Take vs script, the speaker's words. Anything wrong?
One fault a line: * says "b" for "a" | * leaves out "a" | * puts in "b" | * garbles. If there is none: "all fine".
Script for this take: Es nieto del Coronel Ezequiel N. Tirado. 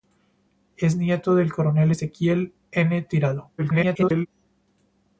* garbles